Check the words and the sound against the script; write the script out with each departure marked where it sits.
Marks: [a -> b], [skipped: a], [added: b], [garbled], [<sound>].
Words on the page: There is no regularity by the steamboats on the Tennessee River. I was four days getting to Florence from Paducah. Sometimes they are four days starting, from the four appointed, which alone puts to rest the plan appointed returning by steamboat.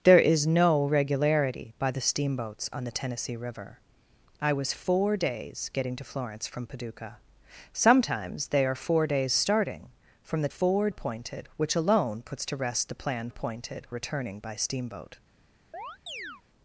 There is no regularity by the steamboats on the Tennessee River. I was four days getting to Florence from Paducah. Sometimes they are four days starting, from the four appointed, which alone puts to rest the plan appointed returning by steamboat. [chirp]